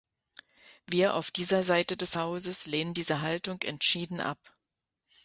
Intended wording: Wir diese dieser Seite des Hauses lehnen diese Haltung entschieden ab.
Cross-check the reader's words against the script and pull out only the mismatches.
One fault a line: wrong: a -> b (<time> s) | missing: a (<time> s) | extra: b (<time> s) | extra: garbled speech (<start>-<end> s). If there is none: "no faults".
wrong: diese -> auf (1.1 s)